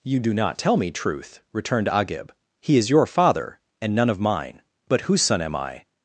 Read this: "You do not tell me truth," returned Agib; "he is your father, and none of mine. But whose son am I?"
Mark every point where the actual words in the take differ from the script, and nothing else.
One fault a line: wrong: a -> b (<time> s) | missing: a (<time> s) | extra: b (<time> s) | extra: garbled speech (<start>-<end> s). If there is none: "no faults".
no faults